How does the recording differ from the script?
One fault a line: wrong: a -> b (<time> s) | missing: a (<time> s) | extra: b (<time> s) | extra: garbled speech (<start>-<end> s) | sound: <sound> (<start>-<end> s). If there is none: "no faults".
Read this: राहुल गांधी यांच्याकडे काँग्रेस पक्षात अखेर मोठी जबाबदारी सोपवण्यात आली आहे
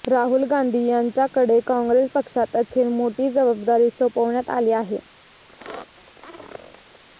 sound: squeak (5.5-7.0 s)